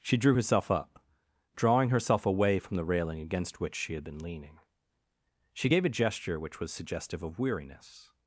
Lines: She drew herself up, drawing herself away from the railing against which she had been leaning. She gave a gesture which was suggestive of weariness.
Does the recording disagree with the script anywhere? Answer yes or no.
no